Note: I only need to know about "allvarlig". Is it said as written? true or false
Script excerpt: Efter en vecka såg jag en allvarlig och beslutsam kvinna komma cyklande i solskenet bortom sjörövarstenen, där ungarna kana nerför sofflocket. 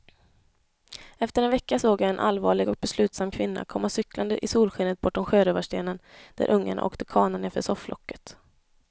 true